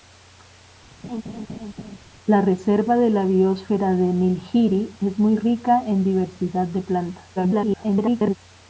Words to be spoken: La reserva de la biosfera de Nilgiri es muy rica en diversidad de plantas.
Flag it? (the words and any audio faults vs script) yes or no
yes